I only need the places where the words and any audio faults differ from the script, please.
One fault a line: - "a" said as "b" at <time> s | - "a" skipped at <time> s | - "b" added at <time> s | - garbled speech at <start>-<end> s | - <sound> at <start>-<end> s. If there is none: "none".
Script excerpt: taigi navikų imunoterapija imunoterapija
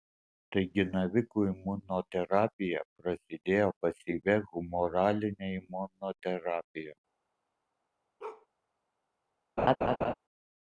- "prasidėjo pasyvia humoraline" added at 3.0 s
- bark at 8.2-8.5 s
- laugh at 9.6-10.1 s